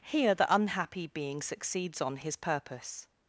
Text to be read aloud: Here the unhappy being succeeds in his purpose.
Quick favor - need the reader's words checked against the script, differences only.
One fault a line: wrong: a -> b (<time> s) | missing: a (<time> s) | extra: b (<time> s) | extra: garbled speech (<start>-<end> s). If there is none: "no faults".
wrong: in -> on (2.0 s)